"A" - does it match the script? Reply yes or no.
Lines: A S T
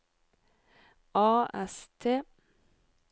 yes